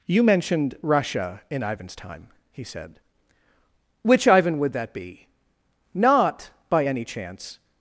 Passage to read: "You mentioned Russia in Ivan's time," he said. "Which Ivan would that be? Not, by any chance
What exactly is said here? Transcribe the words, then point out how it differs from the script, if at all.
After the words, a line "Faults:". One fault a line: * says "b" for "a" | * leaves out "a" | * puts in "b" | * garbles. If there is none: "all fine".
"You mentioned Russia in Ivan's time," he said. "Which Ivan would that be? Not, by any chance
Faults:
all fine